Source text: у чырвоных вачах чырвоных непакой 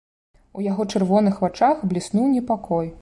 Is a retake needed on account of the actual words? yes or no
yes